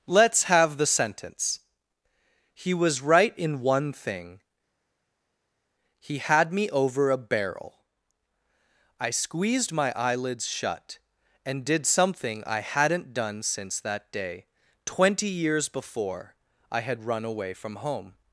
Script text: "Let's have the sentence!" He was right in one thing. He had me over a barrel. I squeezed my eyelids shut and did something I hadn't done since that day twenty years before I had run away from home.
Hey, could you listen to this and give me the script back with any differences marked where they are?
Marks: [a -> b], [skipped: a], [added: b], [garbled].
"Let's have the sentence!" He was right in one thing. He had me over a barrel. I squeezed my eyelids shut and did something I hadn't done since that day twenty years before I had run away from home.